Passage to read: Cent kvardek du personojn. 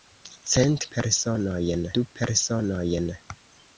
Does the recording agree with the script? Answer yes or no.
no